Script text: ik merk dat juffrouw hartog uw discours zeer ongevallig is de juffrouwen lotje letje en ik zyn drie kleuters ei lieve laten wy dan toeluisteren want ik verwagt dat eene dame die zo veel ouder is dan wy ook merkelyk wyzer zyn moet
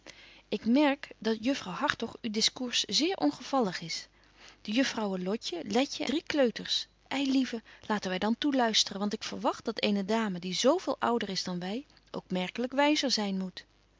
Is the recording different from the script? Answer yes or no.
yes